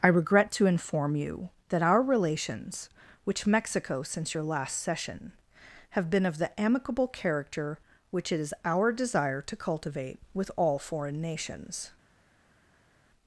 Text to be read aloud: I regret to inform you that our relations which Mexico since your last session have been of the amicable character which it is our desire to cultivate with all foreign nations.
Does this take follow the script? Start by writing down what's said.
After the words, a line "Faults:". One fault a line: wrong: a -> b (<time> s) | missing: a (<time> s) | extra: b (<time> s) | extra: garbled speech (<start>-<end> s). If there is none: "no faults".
I regret to inform you that our relations which Mexico since your last session have been of the amicable character which it is our desire to cultivate with all foreign nations.
Faults:
no faults